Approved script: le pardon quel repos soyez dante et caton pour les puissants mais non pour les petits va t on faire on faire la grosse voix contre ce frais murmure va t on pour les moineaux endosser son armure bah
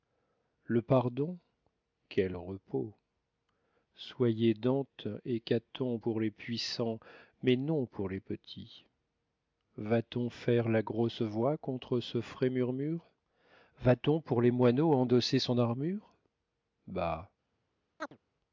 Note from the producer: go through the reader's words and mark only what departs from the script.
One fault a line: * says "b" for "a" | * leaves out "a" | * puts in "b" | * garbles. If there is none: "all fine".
* leaves out "on faire"